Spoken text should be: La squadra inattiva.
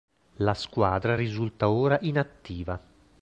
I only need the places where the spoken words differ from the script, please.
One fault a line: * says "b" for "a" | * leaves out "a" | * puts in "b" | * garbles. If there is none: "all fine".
* puts in "risulta ora"